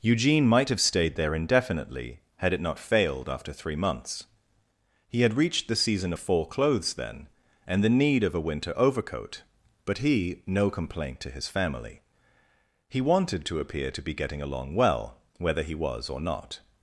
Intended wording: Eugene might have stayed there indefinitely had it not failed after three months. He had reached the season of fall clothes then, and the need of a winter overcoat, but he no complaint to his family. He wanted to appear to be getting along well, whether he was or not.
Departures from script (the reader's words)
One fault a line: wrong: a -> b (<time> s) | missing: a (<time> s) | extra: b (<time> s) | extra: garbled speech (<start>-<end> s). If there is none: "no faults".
no faults